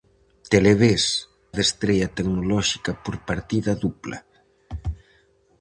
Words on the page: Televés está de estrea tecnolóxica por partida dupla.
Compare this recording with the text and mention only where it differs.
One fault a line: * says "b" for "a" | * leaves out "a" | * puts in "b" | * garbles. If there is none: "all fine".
* leaves out "está"